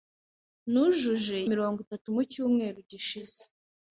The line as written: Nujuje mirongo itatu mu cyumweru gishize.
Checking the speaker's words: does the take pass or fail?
pass